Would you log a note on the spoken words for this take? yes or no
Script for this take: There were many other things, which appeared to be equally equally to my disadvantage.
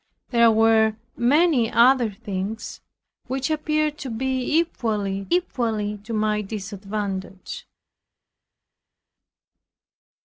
no